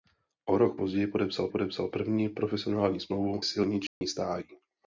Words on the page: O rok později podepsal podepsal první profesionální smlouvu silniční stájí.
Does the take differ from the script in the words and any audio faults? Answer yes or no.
yes